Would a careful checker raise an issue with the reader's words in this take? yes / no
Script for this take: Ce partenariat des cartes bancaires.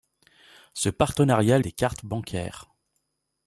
no